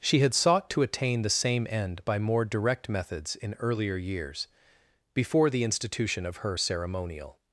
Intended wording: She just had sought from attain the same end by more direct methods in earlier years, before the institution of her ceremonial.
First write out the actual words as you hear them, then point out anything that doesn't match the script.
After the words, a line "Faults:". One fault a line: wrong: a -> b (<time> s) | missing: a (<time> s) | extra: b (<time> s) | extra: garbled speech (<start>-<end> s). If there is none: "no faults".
She had sought to attain the same end by more direct methods in earlier years, before the institution of her ceremonial.
Faults:
missing: just (0.2 s)
wrong: from -> to (0.7 s)